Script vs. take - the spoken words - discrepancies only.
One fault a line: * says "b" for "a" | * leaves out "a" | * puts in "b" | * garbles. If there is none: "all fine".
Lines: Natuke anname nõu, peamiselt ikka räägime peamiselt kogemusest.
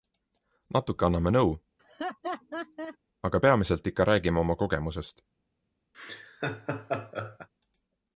* puts in "aga"
* says "oma" for "peamiselt"